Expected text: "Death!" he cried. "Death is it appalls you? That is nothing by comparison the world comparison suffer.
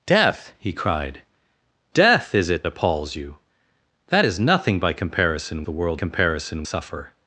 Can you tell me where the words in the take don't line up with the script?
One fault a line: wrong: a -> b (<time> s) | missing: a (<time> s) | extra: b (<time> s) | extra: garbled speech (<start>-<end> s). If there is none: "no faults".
no faults